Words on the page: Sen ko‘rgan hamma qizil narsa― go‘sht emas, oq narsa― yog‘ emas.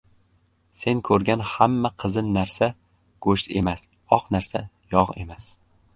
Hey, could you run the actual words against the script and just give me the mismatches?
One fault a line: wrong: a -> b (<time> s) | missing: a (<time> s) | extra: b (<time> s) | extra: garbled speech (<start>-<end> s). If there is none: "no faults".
no faults